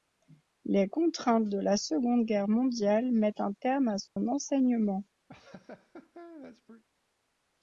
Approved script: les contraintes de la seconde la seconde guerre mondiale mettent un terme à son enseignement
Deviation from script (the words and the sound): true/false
true